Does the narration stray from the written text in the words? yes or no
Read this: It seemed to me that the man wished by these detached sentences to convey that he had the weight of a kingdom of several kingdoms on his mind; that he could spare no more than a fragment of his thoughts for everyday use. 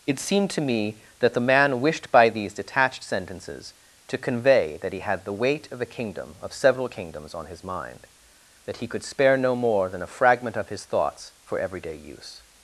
no